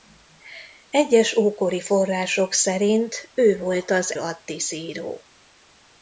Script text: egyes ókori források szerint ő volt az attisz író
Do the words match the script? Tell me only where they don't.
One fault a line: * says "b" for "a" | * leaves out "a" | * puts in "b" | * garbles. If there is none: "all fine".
all fine